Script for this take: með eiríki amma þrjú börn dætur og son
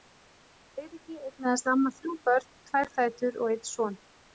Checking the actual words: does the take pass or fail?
fail